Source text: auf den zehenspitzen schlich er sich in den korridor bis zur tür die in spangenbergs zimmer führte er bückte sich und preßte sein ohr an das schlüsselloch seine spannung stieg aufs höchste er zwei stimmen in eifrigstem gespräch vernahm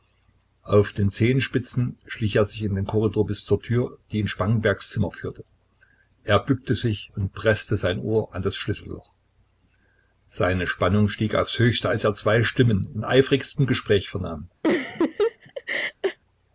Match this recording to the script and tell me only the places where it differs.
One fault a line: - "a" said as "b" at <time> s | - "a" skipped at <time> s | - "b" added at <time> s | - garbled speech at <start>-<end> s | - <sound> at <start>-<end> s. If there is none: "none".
- "als" added at 11.9 s
- laugh at 14.6-16.2 s